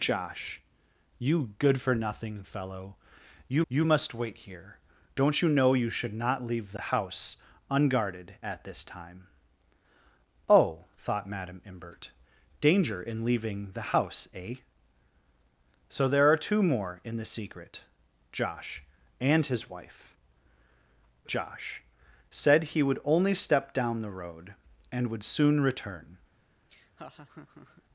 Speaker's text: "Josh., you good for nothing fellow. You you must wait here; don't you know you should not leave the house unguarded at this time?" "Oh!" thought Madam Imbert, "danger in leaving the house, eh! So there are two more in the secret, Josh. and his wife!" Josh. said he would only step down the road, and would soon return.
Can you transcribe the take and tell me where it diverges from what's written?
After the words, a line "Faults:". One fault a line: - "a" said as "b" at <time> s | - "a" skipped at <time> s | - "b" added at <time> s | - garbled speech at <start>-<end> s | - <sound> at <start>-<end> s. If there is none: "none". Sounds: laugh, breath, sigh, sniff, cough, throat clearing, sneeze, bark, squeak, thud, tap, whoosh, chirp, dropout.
"Josh., you good for nothing fellow. You you must wait here; don't you know you should not leave the house unguarded at this time?" "Oh!" thought Madam Imbert, "danger in leaving the house, eh! So there are two more in the secret, Josh. and his wife!" Josh. said he would only step down the road, and would soon return.
Faults:
- laugh at 26.7-27.8 s